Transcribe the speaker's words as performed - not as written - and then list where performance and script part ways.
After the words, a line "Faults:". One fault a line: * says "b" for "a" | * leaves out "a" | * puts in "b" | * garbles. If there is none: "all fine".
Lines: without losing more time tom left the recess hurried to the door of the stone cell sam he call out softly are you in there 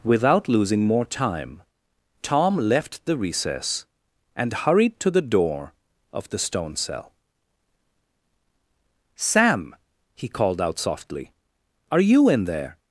without losing more time tom left the recess and hurried to the door of the stone cell sam he called out softly are you in there
Faults:
* puts in "and"
* says "called" for "call"